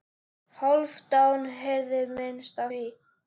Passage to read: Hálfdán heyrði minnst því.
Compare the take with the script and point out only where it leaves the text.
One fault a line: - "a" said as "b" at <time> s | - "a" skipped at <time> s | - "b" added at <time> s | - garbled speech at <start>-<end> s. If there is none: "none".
none